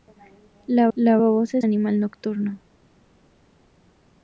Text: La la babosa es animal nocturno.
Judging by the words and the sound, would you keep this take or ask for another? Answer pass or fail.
pass